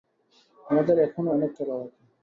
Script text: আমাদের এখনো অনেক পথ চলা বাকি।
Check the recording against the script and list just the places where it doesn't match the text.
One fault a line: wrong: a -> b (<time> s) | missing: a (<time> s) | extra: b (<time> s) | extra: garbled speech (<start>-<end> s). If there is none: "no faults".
missing: পথ (1.5 s)